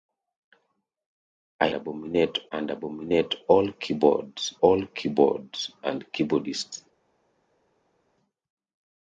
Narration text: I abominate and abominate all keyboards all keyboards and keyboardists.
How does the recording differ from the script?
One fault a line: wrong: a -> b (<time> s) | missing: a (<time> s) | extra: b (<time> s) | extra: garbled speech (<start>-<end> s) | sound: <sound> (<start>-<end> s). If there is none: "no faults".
no faults